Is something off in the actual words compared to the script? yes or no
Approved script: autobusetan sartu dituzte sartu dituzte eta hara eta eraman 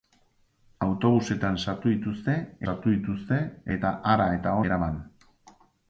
no